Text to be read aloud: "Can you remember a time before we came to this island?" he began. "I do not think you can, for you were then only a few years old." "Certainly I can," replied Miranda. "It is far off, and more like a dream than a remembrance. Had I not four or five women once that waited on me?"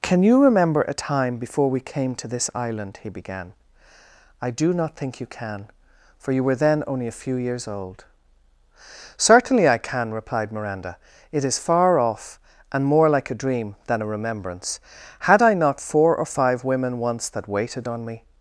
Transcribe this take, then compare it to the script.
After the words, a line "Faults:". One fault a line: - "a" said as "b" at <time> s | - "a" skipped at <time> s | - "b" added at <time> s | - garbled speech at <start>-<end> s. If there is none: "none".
"Can you remember a time before we came to this island?" he began. "I do not think you can, for you were then only a few years old." "Certainly I can," replied Miranda. "It is far off, and more like a dream than a remembrance. Had I not four or five women once that waited on me?"
Faults:
none